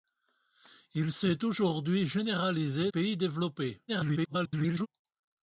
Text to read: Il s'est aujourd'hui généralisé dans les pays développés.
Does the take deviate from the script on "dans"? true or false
true